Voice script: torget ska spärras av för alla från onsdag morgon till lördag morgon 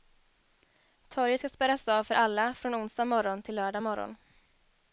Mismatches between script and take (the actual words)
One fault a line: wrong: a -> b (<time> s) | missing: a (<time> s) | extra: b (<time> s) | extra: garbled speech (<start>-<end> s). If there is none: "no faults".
no faults